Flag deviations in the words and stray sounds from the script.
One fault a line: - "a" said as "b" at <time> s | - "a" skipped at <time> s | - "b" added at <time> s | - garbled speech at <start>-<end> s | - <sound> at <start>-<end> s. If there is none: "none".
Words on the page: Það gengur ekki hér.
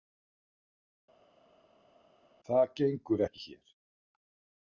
none